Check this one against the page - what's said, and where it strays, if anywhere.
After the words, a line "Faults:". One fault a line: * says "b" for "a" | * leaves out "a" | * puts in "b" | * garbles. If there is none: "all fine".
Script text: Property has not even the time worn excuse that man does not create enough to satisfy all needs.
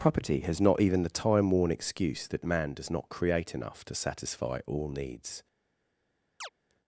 Property has not even the time worn excuse that man does not create enough to satisfy all needs.
Faults:
all fine